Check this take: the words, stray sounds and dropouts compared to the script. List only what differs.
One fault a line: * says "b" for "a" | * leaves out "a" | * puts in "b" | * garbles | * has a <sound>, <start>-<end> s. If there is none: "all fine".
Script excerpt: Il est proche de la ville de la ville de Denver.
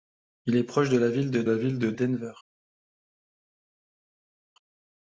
all fine